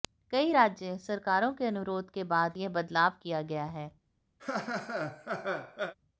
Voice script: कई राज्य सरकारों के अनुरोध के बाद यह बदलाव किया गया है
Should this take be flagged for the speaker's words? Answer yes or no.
no